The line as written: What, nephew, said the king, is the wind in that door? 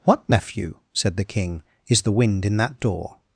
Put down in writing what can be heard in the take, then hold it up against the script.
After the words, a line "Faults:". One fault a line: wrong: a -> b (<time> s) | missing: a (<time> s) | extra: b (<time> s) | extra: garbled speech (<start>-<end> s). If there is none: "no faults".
What, nephew, said the king, is the wind in that door?
Faults:
no faults